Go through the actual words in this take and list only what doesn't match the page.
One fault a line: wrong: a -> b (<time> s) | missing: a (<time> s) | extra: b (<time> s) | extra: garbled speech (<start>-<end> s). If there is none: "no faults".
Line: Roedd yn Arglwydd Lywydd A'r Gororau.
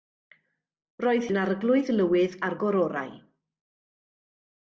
no faults